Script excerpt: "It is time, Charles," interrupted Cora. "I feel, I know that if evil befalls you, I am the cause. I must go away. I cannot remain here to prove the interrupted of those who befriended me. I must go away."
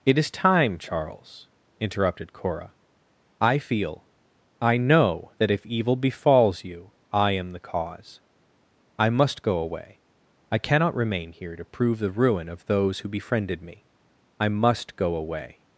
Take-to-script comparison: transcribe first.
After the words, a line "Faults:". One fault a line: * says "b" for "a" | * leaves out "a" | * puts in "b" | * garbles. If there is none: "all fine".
"It is time, Charles," interrupted Cora. "I feel, I know that if evil befalls you, I am the cause. I must go away. I cannot remain here to prove the ruin of those who befriended me. I must go away."
Faults:
* says "ruin" for "interrupted"